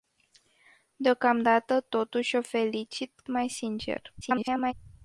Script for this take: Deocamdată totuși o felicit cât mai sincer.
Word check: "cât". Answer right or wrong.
wrong